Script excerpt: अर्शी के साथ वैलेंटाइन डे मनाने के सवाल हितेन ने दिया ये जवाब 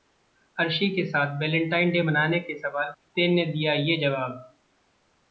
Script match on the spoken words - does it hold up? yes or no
yes